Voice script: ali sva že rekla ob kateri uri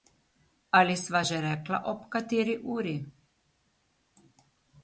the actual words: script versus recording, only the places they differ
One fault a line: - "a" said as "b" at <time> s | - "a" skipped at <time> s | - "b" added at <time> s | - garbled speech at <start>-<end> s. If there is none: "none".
none